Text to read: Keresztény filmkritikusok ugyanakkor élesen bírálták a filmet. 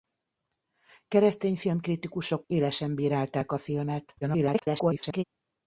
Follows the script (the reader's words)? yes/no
no